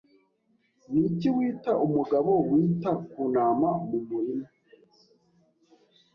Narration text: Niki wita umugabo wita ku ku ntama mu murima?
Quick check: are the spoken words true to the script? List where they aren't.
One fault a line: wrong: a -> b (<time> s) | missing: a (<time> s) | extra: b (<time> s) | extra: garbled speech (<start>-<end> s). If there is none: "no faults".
missing: ku (3.2 s)